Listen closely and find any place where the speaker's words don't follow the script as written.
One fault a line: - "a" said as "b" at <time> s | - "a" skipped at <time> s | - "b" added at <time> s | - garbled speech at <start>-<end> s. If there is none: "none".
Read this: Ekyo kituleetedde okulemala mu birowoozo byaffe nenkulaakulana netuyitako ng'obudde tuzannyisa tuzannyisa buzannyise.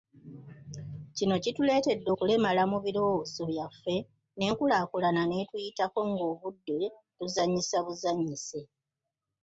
- "Ekyo" said as "Kino" at 1.1 s
- "tuzannyisa" skipped at 7.8 s